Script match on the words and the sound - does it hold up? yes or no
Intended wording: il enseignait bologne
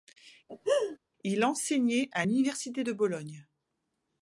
no